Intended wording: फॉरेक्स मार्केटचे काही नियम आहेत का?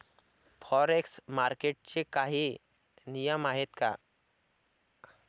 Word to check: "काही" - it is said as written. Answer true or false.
true